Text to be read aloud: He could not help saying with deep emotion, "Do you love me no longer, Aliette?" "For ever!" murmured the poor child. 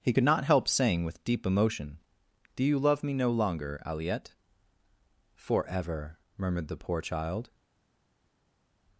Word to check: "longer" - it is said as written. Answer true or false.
true